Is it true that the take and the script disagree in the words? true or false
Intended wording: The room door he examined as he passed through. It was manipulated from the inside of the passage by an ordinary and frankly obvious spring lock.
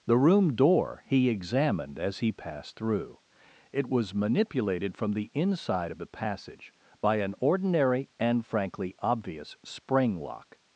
false